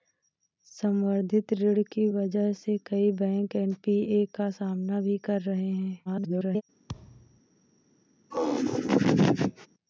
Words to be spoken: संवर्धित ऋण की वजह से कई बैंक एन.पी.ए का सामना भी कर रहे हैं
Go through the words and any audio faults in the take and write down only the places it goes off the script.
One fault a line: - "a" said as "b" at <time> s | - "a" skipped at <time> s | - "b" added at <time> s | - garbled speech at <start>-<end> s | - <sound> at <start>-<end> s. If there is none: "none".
- garbled speech at 6.1-6.6 s
- thud at 6.9-7.4 s
- laugh at 8.3-9.7 s